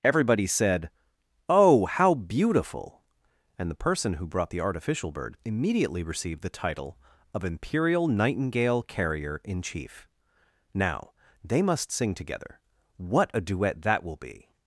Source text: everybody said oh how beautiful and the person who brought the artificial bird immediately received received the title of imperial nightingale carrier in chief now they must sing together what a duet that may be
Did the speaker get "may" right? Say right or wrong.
wrong